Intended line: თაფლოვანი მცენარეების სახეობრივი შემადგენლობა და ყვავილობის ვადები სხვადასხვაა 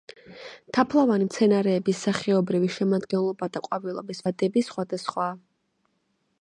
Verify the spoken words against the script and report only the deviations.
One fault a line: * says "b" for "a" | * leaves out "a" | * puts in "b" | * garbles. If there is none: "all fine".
all fine